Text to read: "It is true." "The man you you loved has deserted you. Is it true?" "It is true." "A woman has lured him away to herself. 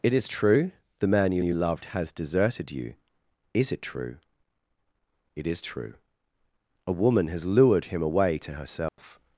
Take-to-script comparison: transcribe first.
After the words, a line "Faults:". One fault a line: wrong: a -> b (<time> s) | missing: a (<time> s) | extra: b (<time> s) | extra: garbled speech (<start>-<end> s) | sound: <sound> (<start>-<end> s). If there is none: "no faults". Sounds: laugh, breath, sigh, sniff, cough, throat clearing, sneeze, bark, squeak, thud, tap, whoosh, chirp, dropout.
"It is true." "The man you you loved has deserted you. Is it true?" "It is true." "A woman has lured him away to herself.
Faults:
sound: dropout (8.9-9.0 s)